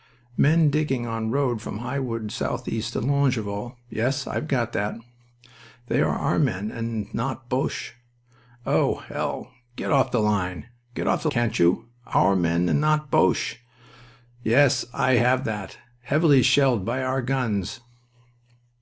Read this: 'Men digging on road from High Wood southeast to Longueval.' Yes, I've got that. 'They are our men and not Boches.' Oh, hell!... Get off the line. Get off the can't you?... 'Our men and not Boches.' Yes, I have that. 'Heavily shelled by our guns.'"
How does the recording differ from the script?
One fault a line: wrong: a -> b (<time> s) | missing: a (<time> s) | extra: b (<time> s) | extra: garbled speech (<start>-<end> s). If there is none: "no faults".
no faults